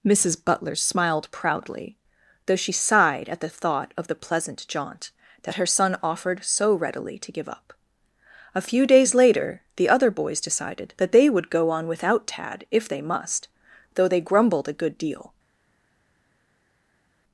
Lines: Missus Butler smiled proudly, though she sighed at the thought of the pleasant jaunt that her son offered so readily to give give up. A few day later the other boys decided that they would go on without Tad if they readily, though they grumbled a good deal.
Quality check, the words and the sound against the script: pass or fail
fail